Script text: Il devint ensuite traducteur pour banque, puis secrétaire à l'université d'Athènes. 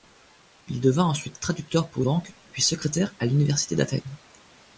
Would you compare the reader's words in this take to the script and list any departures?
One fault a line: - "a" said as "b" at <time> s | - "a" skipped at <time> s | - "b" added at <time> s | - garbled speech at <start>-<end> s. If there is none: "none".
none